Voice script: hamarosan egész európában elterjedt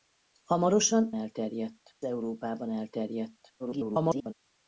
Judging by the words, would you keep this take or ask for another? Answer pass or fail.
fail